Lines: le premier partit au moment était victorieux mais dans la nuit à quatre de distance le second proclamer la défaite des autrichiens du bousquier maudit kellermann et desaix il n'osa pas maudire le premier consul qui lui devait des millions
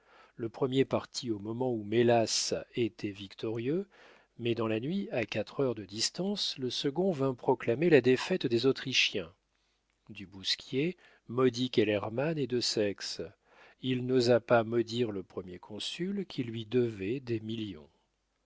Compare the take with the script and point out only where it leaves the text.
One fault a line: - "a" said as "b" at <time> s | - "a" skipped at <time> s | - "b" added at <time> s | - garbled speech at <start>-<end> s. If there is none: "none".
- "où mélas" added at 1.7 s
- "heures" added at 5.6 s
- "vint" added at 7.1 s